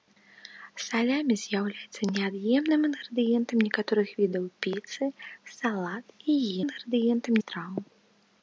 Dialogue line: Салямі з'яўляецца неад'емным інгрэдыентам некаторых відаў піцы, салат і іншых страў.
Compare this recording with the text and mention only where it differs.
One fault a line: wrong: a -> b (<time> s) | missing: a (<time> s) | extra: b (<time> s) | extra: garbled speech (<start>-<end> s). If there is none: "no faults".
wrong: іншых -> інгрэдыентам (6.6 s)